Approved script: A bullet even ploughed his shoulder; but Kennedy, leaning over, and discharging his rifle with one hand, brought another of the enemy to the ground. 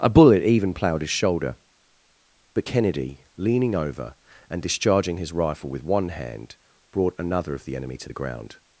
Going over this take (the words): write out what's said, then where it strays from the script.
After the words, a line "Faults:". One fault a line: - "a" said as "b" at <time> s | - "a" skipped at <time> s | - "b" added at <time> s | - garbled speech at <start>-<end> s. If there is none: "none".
A bullet even ploughed his shoulder; but Kennedy, leaning over, and discharging his rifle with one hand, brought another of the enemy to the ground.
Faults:
none